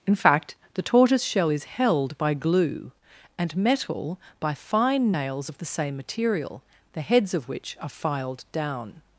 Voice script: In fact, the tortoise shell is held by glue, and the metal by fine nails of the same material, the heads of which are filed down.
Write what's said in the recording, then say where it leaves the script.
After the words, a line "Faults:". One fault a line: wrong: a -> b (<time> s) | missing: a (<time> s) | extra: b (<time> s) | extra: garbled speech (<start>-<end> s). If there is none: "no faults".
In fact, the tortoise shell is held by glue, and metal by fine nails of the same material, the heads of which are filed down.
Faults:
missing: the (3.6 s)